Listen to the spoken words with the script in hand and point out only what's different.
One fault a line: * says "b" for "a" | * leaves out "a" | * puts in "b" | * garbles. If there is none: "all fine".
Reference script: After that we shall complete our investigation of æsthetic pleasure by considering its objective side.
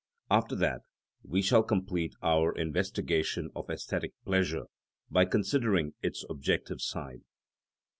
all fine